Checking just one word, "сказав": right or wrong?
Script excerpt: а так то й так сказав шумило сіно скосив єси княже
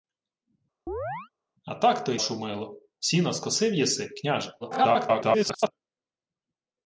wrong